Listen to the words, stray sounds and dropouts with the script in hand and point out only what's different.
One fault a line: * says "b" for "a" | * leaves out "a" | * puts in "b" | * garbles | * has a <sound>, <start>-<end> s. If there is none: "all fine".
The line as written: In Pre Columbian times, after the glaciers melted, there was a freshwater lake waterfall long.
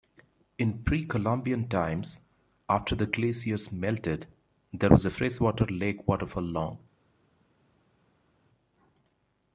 all fine